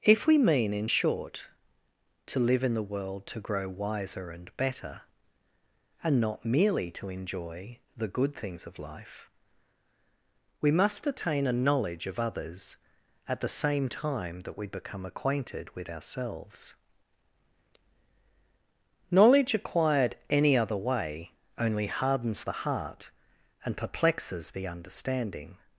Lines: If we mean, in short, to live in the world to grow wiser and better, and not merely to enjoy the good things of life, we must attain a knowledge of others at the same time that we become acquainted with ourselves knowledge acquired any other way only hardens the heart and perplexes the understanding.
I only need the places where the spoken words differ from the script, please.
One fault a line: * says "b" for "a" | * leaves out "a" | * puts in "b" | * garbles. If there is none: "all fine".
all fine